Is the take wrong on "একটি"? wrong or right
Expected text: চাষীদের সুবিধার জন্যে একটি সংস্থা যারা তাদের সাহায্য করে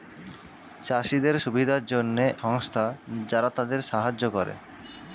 wrong